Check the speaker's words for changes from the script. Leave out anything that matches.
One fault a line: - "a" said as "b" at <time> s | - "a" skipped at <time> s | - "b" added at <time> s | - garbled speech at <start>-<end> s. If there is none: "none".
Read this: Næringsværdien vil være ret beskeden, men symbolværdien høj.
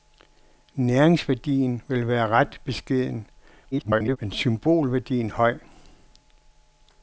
- garbled speech at 3.7-4.2 s